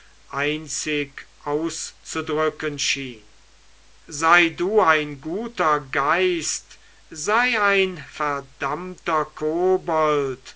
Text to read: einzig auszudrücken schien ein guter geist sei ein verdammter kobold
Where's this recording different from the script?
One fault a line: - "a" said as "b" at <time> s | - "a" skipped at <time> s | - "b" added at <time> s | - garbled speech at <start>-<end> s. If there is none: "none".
- "sei du" added at 4.1 s